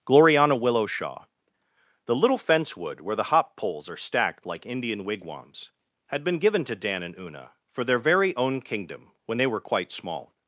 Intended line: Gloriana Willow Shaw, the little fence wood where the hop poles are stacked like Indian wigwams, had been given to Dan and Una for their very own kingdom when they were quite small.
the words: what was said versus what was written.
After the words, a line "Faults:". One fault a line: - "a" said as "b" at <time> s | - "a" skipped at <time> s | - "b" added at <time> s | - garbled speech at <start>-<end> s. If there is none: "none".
Gloriana Willow Shaw, the little fence wood where the hop poles are stacked like Indian wigwams, had been given to Dan and Una for their very own kingdom when they were quite small.
Faults:
none